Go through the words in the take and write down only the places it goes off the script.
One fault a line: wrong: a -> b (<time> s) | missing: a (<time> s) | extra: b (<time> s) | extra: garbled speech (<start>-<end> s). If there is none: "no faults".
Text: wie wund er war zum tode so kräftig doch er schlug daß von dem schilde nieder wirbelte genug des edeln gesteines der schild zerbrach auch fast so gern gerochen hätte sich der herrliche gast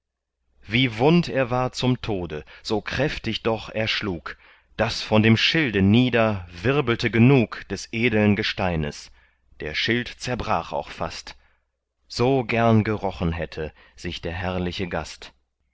no faults